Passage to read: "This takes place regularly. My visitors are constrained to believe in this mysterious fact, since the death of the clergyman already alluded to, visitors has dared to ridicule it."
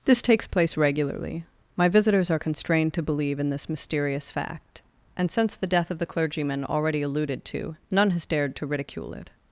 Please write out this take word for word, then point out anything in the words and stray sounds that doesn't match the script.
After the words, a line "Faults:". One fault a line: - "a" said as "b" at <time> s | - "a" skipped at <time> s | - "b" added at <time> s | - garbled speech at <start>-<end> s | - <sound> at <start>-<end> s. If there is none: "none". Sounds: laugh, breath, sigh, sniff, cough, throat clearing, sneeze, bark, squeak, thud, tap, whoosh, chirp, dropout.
"This takes place regularly. My visitors are constrained to believe in this mysterious fact, and since the death of the clergyman already alluded to, none has dared to ridicule it."
Faults:
- "and" added at 5.2 s
- "visitors" said as "none" at 7.9 s